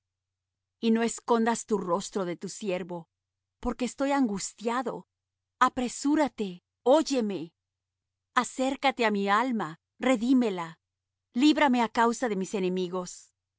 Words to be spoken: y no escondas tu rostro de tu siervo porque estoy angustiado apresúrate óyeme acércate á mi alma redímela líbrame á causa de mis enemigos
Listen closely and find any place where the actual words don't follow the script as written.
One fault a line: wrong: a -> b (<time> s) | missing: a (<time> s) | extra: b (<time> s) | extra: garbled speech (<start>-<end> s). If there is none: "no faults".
no faults